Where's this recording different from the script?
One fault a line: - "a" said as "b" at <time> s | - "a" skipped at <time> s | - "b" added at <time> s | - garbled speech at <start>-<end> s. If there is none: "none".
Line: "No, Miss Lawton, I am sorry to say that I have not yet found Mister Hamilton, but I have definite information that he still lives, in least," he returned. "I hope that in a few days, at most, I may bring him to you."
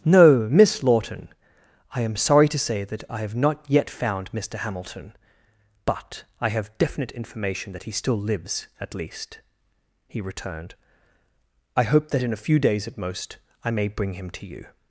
- "in" said as "at" at 8.8 s